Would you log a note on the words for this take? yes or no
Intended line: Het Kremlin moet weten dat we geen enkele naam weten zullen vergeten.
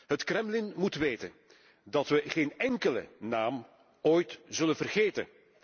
yes